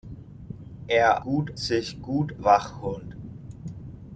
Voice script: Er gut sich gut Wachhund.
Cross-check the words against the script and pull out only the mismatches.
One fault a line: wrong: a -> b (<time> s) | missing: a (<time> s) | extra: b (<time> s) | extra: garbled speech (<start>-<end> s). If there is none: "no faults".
no faults